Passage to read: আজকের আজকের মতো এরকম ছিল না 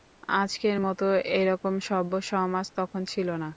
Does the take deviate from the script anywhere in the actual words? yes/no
yes